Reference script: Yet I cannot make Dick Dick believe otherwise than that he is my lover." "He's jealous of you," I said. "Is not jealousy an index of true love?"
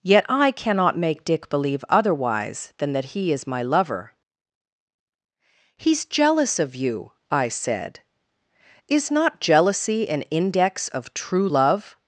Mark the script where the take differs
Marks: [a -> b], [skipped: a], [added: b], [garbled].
Yet I cannot make Dick [skipped: Dick] believe otherwise than that he is my lover." "He's jealous of you," I said. "Is not jealousy an index of true love?"